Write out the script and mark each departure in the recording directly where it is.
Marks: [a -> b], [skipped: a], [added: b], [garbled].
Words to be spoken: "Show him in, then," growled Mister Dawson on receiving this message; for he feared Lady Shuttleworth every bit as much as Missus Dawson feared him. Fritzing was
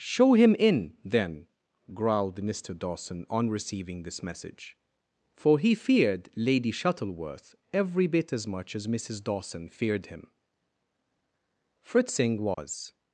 "Show him in, then," growled Mister Dawson on receiving this message; for he feared Lady Shuttleworth every bit as much as Missus Dawson feared him. Fritzing was